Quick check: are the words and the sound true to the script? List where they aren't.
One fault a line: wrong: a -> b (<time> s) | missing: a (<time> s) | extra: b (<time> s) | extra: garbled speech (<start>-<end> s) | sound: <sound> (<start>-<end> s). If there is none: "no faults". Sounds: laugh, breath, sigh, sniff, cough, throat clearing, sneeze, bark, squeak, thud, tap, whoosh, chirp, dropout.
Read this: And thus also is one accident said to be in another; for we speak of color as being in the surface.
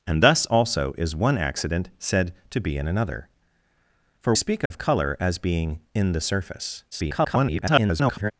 missing: we (4.3 s)
sound: dropout (4.7-4.7 s)
extra: garbled speech (6.9-8.3 s)